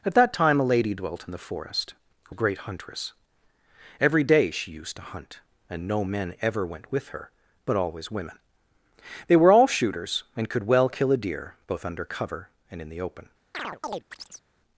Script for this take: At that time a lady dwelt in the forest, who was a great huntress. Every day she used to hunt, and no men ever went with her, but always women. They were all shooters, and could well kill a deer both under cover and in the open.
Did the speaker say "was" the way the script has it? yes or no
no